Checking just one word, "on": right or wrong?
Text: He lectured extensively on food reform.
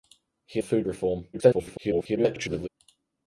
wrong